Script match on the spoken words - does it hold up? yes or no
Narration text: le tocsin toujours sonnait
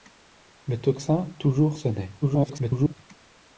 no